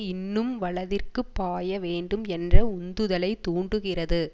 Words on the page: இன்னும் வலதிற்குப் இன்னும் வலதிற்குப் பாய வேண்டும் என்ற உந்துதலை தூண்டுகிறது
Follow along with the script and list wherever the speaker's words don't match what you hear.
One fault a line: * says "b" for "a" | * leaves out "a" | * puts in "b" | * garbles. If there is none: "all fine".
* leaves out "இன்னும் வலதிற்குப்"